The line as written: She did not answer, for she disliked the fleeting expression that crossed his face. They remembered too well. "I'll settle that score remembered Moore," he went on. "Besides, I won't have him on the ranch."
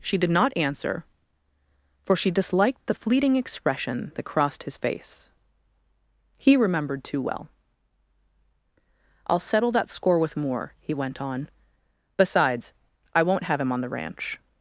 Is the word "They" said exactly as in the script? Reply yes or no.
no